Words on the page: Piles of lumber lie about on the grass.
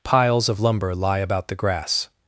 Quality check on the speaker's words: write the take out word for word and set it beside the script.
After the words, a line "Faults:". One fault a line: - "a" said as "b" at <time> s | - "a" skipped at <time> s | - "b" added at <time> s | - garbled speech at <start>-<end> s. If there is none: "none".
Piles of lumber lie about the grass.
Faults:
- "on" skipped at 1.5 s